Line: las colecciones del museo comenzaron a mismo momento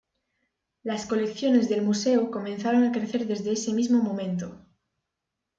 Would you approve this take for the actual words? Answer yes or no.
no